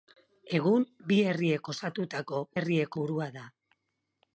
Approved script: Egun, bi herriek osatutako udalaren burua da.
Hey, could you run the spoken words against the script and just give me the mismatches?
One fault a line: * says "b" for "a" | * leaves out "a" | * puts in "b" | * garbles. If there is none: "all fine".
* says "herriek" for "udalaren"